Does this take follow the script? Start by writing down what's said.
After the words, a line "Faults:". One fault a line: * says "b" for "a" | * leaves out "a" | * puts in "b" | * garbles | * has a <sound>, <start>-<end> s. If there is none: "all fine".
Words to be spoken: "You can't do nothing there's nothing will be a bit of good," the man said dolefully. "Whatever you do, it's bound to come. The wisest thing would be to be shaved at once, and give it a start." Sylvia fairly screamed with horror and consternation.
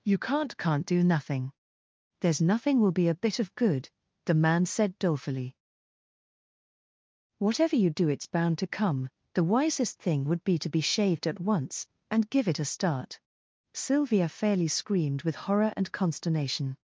"You can't can't do nothing there's nothing will be a bit of good," the man said dolefully. "Whatever you do, it's bound to come. The wisest thing would be to be shaved at once, and give it a start." Sylvia fairly screamed with horror and consternation.
Faults:
* puts in "can't"